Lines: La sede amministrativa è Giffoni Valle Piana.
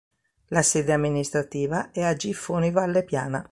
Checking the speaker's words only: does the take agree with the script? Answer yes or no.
no